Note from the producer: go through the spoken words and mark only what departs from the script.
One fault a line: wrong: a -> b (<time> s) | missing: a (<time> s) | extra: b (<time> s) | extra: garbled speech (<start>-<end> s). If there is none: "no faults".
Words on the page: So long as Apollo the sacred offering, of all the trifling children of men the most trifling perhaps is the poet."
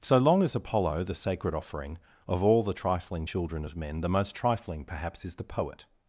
no faults